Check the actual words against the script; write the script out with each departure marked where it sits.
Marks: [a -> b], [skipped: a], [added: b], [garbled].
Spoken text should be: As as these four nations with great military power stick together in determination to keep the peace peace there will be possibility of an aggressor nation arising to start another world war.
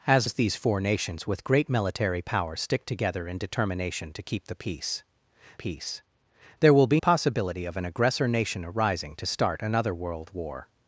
As as these four nations with great military power stick together in determination to keep the peace peace there will be possibility of an aggressor nation arising to start another world war.